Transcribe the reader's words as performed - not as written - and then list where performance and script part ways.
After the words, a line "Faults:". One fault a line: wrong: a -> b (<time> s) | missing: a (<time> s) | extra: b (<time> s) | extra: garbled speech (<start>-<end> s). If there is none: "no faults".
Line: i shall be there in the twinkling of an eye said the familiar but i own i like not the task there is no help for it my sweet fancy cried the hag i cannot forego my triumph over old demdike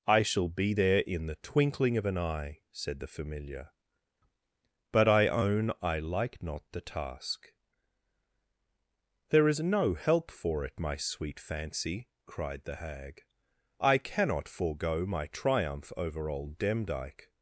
i shall be there in the twinkling of an eye said the familiar but i own i like not the task there is no help for it my sweet fancy cried the hag i cannot forego my triumph over old demdike
Faults:
no faults